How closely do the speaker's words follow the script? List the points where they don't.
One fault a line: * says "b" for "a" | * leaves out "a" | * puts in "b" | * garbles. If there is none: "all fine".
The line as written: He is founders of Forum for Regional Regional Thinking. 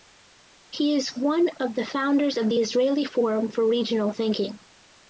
* puts in "one of the"
* puts in "the Israeli"
* leaves out "Regional"